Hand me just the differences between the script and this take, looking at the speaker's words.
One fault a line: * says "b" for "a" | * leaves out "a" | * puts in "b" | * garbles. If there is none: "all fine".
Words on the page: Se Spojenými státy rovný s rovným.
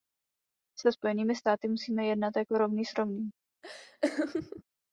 * puts in "musíme jednat jako"